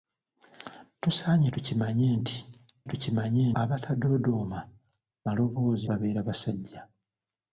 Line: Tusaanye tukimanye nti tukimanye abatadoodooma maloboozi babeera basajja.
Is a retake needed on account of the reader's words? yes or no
no